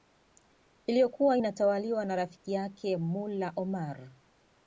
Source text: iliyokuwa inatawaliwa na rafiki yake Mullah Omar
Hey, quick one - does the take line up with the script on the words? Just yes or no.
yes